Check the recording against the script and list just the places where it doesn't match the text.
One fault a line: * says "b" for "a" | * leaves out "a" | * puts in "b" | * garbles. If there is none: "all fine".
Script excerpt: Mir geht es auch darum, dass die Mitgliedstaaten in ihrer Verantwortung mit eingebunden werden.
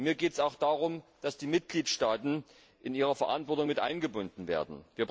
all fine